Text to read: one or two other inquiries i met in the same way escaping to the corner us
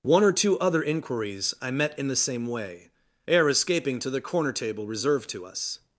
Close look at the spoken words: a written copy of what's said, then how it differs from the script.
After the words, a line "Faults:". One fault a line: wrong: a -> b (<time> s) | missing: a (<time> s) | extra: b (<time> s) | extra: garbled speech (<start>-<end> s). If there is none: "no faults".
one or two other inquiries i met in the same way ere escaping to the corner table reserved to us
Faults:
extra: ere (3.3 s)
extra: table reserved to (4.5 s)